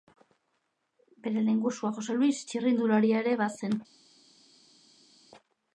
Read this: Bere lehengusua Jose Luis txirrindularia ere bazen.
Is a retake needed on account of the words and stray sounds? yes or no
no